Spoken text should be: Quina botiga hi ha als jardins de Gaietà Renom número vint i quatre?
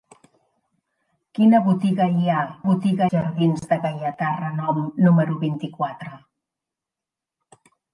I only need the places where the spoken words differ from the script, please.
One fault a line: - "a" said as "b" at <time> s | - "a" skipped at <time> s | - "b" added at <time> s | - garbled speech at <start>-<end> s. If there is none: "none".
- "als" said as "botiga" at 2.7 s